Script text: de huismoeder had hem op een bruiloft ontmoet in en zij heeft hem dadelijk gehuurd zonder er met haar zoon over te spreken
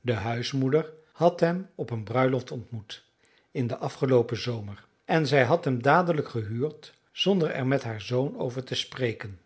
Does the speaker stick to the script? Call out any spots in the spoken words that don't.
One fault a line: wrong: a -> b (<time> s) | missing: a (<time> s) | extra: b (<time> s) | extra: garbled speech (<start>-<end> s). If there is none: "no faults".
extra: den afgeloopen zomer (3.7 s)
wrong: heeft -> had (5.4 s)